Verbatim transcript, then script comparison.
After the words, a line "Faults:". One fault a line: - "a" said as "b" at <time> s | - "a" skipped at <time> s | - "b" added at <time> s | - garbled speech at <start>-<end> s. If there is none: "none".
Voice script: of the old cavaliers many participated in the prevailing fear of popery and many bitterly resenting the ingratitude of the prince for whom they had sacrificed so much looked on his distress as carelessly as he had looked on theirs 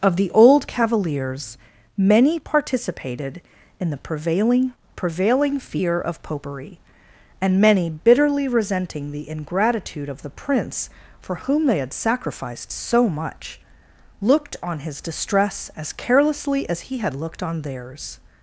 of the old cavaliers many participated in the prevailing prevailing fear of popery and many bitterly resenting the ingratitude of the prince for whom they had sacrificed so much looked on his distress as carelessly as he had looked on theirs
Faults:
- "prevailing" added at 4.9 s